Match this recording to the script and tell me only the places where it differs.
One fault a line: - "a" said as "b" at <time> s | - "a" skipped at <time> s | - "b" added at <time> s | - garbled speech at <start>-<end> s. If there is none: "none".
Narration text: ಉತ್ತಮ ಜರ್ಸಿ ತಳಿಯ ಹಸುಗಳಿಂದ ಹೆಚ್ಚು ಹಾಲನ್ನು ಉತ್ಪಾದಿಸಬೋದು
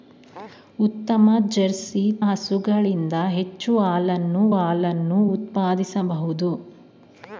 - "ತಳಿಯ" skipped at 2.0 s
- "ಹಾಲನ್ನು" added at 4.5 s